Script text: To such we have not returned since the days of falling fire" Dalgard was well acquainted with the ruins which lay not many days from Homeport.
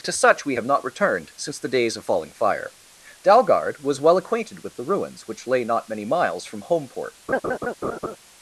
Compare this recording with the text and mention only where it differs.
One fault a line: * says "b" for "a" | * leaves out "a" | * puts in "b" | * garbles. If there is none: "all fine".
* says "miles" for "days"